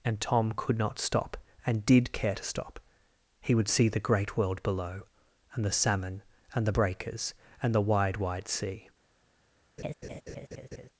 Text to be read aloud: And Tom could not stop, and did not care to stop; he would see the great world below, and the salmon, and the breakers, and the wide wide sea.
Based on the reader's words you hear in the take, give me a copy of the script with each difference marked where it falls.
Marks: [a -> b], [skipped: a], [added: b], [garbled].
And Tom could not stop, and did [skipped: not] care to stop; he would see the great world below, and the salmon, and the breakers, and the wide wide sea.